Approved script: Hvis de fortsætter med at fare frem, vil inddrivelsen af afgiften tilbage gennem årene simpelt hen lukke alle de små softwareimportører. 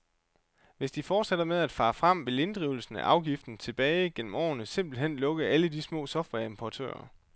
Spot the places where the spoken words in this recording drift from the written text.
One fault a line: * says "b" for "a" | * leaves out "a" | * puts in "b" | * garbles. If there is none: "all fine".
all fine